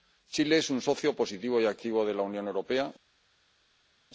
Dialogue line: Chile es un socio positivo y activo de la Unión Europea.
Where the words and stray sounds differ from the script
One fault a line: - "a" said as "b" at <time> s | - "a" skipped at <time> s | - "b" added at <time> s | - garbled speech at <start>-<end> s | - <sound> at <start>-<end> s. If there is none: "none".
none